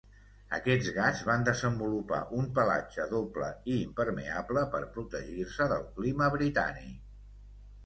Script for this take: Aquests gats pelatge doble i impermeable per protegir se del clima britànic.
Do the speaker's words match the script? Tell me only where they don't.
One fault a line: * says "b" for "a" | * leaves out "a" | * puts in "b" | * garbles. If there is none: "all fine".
* puts in "van desenvolupar un"